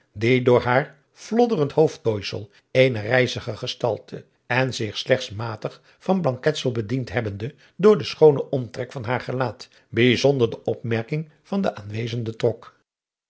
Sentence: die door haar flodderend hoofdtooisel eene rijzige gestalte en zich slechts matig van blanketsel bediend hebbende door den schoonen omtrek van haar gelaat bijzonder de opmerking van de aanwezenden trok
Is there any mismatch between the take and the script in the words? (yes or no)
no